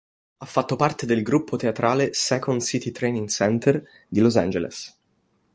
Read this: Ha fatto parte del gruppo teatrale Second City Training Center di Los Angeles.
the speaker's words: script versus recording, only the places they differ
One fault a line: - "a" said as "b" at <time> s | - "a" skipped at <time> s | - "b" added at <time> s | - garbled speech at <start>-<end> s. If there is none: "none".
none